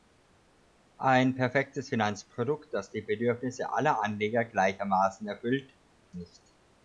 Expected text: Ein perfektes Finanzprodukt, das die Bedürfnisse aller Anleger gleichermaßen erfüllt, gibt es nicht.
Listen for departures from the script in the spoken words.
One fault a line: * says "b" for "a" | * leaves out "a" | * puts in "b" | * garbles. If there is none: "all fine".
* leaves out "gibt es"